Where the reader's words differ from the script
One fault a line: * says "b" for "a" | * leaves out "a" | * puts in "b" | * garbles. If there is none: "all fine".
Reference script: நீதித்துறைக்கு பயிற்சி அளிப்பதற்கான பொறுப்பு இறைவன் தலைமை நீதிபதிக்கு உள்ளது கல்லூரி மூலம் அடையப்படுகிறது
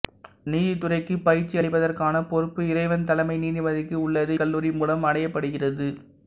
all fine